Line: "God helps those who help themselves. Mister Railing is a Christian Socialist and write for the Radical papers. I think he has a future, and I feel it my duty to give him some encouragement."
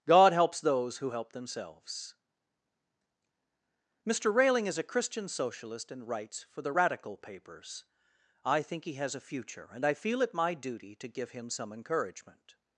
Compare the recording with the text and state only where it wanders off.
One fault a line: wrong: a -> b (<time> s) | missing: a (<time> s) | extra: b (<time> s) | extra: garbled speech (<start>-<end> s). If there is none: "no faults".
wrong: write -> writes (6.1 s)